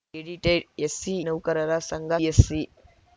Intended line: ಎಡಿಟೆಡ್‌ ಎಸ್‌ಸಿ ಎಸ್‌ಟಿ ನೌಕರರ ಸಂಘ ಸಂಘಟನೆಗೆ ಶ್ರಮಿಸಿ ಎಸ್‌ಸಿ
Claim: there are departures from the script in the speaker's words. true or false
true